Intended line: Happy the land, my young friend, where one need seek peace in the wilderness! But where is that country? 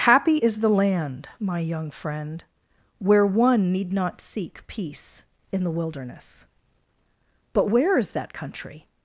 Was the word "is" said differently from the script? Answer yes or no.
no